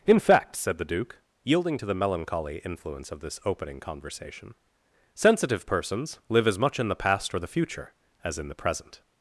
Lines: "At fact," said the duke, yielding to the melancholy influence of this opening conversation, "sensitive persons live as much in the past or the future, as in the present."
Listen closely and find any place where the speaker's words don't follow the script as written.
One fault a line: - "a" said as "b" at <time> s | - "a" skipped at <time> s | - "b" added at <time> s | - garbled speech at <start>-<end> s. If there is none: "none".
- "At" said as "In" at 0.1 s